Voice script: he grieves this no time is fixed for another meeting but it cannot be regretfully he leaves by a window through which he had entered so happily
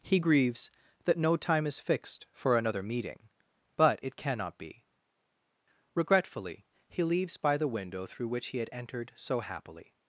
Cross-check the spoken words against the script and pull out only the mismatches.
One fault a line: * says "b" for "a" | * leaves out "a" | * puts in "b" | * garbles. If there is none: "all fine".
* says "that" for "this"
* says "the" for "a"